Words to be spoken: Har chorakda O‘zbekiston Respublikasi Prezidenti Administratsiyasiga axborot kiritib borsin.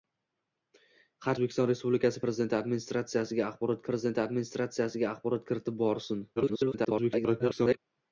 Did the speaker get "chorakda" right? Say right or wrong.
wrong